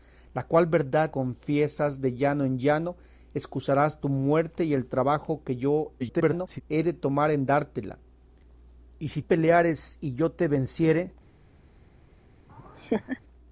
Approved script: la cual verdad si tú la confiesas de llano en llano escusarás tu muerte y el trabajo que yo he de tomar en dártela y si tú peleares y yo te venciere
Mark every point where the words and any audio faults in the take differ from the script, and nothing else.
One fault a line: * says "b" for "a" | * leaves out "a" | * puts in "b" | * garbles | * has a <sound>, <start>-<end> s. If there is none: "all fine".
* leaves out "si tú la"
* garbles
* leaves out "tú"
* has a laugh, 12.5-13.2 s